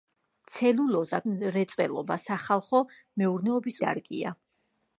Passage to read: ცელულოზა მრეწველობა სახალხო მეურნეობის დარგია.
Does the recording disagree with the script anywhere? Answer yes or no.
no